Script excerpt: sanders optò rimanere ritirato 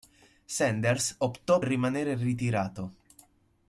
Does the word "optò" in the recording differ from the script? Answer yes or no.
no